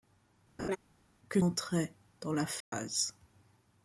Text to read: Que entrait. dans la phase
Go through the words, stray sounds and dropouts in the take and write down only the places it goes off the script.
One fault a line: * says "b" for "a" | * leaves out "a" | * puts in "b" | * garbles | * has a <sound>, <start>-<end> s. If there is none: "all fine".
* has a laugh, 0.6-0.8 s
* has a dropout, 2.6-2.7 s